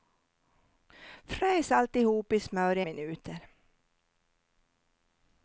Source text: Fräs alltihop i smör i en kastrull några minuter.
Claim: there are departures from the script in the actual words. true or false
true